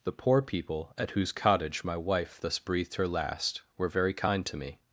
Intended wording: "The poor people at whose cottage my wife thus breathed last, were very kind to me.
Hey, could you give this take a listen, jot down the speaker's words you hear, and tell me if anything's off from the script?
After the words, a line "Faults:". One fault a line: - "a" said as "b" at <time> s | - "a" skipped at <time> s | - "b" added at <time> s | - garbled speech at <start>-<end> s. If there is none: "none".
"The poor people at whose cottage my wife thus breathed her last, were very kind to me.
Faults:
- "her" added at 2.9 s